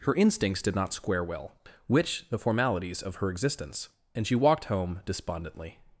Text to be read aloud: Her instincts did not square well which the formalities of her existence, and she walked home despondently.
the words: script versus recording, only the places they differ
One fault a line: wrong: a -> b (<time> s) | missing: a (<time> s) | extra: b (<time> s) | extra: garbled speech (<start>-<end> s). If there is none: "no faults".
no faults